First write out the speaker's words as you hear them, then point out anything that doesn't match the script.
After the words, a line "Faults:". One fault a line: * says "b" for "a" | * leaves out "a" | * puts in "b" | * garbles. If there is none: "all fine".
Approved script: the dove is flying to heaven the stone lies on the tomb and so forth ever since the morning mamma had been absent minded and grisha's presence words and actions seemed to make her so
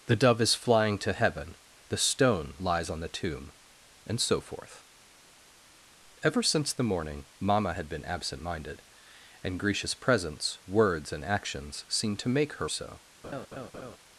the dove is flying to heaven the stone lies on the tomb and so forth ever since the morning mamma had been absent minded and grisha's presence words and actions seemed to make her so
Faults:
all fine